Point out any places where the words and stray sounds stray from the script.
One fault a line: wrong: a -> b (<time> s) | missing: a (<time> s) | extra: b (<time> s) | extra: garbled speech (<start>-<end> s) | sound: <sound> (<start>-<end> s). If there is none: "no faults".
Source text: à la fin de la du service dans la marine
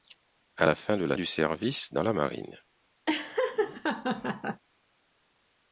sound: laugh (3.1-4.6 s)